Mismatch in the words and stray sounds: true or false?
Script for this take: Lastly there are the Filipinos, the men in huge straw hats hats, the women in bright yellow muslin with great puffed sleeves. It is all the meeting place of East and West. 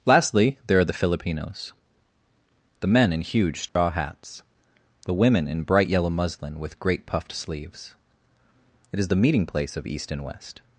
true